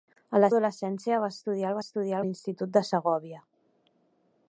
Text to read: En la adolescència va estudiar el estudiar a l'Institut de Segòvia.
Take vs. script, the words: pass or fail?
pass